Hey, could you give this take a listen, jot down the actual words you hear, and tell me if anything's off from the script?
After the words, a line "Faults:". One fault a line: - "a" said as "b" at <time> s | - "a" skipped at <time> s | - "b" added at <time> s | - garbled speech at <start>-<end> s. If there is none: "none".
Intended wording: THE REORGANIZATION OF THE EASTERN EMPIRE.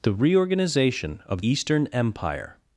THE REORGANIZATION OF EASTERN EMPIRE.
Faults:
- "THE" skipped at 1.4 s